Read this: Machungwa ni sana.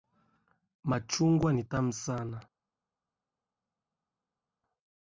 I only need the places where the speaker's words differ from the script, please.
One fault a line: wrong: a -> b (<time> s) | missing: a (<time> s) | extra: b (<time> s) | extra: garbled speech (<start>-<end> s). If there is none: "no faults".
extra: tamu (1.6 s)